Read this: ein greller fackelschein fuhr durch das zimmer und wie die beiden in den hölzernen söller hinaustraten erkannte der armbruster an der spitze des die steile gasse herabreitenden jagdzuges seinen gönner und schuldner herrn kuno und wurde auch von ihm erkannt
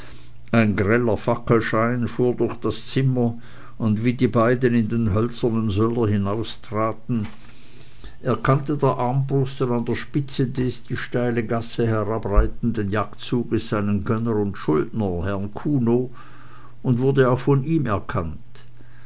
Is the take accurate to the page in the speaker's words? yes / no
yes